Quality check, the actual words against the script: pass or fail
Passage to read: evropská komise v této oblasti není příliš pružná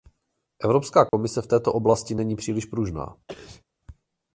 pass